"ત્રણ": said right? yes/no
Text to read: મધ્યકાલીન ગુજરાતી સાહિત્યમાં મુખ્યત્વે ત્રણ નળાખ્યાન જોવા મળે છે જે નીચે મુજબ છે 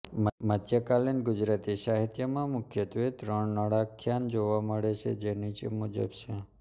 yes